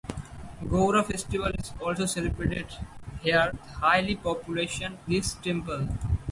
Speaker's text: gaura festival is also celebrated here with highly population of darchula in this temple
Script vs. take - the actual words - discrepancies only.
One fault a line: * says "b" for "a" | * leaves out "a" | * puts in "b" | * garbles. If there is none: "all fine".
* leaves out "with"
* leaves out "of darchula in"